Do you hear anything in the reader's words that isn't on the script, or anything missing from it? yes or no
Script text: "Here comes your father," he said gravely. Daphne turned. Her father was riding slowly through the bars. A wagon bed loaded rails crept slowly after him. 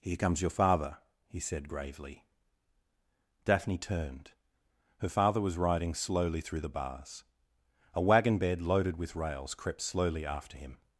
yes